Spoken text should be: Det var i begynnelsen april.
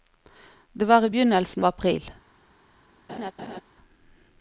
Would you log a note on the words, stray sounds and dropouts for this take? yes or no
yes